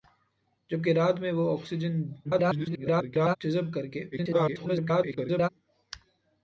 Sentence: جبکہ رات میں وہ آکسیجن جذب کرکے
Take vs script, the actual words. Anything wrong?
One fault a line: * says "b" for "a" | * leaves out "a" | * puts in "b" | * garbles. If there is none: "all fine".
* garbles
* garbles